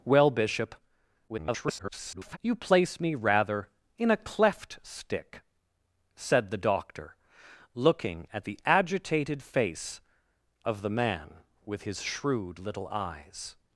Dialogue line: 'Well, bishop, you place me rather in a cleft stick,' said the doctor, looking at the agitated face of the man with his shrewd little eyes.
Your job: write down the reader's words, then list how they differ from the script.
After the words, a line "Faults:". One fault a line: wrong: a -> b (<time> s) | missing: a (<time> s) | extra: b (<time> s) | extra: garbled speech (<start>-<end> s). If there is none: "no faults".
'Well, bishop, [garbled] you place me rather in a cleft stick,' said the doctor, looking at the agitated face of the man with his shrewd little eyes.
Faults:
extra: garbled speech (1.3-2.4 s)